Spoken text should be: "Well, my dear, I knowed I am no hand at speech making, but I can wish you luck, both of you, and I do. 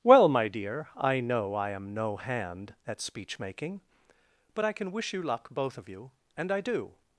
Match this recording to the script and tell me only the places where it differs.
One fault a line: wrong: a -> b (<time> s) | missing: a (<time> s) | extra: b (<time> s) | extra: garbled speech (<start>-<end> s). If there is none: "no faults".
wrong: knowed -> know (1.2 s)